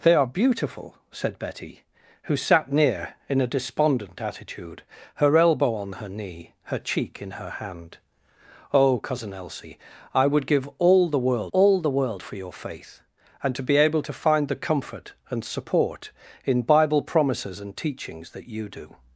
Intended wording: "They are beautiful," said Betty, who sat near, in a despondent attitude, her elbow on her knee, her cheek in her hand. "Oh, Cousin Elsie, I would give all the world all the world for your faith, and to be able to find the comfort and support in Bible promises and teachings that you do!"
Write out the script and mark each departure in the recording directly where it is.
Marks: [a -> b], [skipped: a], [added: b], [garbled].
"They are beautiful," said Betty, who sat near, in a despondent attitude, her elbow on her knee, her cheek in her hand. "Oh, Cousin Elsie, I would give all the world all the world for your faith, and to be able to find the comfort and support in Bible promises and teachings that you do!"